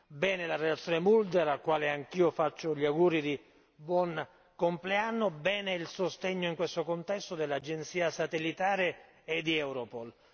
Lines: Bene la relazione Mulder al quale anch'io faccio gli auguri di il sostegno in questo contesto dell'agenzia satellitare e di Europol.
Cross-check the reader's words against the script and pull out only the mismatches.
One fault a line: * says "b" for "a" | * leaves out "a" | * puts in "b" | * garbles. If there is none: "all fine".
* puts in "buon compleanno bene"